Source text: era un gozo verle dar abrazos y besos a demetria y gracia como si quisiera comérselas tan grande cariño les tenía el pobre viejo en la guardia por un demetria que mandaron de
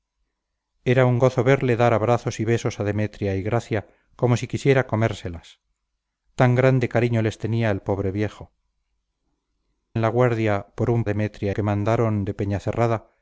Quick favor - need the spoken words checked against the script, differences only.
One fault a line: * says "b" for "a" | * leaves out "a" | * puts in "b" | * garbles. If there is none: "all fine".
all fine